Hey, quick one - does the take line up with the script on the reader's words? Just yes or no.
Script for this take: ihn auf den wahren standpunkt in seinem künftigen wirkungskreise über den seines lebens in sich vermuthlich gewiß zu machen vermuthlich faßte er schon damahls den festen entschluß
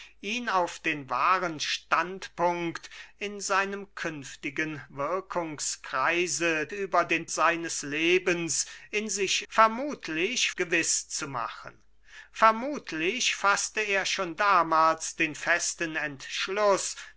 yes